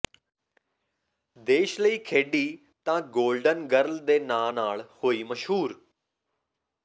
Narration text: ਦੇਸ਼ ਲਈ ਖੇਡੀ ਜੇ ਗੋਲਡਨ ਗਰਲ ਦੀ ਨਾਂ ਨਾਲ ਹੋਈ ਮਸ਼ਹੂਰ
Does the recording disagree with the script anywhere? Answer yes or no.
yes